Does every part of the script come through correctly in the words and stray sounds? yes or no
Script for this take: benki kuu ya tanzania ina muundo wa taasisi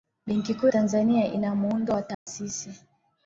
no